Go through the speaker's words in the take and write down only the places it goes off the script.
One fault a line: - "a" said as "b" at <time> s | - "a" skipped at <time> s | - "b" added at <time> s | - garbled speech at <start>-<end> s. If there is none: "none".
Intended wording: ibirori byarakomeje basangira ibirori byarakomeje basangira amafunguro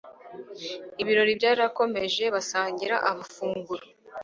- "ibirori byarakomeje basangira" skipped at 2.9 s